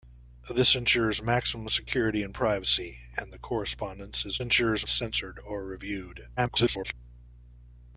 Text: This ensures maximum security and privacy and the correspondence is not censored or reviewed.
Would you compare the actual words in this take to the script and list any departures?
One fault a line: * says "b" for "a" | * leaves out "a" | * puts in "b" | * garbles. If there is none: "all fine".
* says "ensures" for "not"
* garbles